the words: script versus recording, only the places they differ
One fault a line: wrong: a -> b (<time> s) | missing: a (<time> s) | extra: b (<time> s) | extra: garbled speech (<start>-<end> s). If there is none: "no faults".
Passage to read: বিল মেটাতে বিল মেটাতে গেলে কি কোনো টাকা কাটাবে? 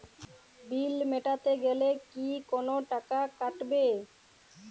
missing: বিল মেটাতে (1.5 s)